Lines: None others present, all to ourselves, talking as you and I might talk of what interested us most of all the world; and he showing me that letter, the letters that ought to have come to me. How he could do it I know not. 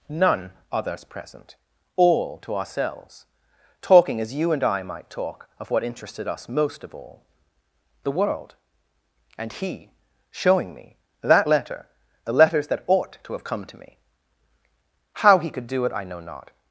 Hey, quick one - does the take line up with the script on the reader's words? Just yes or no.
yes